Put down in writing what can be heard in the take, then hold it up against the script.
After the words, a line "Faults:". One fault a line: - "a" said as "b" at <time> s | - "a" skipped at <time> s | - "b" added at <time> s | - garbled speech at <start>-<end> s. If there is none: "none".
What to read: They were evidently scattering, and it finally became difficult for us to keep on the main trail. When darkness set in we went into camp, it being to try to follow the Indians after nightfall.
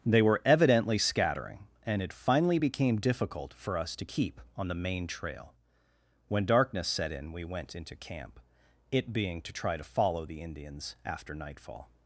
They were evidently scattering, and it finally became difficult for us to keep on the main trail. When darkness set in we went into camp, it being to try to follow the Indians after nightfall.
Faults:
none